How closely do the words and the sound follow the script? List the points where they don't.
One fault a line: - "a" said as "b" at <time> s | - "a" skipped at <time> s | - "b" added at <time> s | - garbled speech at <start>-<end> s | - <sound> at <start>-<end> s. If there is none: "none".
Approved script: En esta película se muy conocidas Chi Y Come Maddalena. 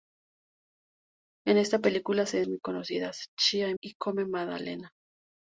none